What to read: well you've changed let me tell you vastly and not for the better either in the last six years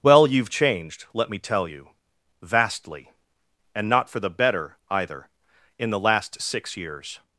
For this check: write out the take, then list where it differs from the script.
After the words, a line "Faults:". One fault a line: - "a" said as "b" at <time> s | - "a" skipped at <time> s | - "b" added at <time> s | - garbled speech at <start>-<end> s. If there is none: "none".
well you've changed let me tell you vastly and not for the better either in the last six years
Faults:
none